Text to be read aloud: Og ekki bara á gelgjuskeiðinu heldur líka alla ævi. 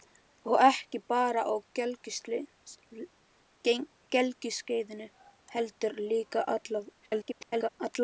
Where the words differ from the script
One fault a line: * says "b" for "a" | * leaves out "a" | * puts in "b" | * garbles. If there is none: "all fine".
* garbles